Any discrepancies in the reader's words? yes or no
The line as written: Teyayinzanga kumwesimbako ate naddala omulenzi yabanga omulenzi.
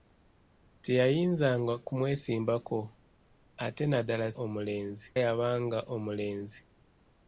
no